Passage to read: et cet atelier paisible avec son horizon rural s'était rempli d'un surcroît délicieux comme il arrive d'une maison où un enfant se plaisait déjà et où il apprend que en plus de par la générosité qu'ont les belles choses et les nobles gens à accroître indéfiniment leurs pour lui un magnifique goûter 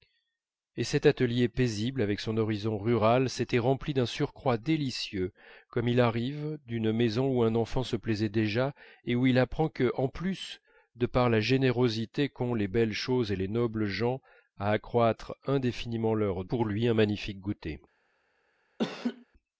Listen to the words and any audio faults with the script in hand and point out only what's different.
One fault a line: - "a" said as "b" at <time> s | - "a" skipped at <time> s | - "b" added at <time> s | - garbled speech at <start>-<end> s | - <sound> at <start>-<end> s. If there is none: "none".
- laugh at 18.8-19.3 s